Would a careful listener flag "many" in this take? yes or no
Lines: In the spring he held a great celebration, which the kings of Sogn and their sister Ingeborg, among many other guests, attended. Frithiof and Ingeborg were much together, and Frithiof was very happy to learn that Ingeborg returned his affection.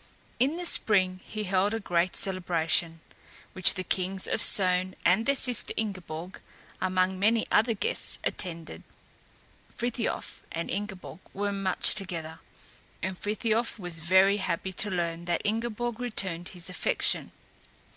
no